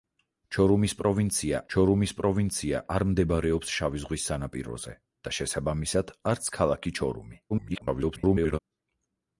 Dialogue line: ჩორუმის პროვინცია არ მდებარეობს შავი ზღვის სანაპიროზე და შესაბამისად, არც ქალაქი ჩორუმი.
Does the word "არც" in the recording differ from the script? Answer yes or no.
no